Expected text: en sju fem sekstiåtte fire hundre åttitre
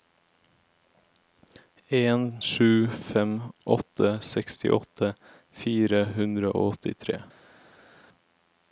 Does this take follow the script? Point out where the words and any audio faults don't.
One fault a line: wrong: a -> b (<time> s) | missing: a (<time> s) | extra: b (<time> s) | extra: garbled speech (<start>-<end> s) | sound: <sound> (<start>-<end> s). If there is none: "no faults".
extra: åtte (3.6 s)
extra: og (6.5 s)